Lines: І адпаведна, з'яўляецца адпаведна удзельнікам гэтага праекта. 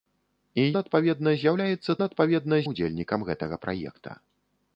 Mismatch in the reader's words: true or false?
false